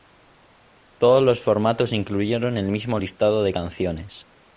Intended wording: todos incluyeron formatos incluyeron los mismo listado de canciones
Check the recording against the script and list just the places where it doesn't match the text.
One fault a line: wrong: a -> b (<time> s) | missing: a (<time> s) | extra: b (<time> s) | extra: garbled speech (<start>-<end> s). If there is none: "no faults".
wrong: incluyeron -> los (1.2 s)
wrong: los -> el (2.6 s)